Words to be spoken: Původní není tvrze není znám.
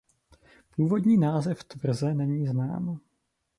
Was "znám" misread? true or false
false